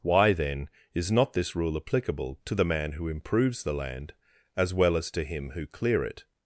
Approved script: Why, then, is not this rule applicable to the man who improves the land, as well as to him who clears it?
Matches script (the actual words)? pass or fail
fail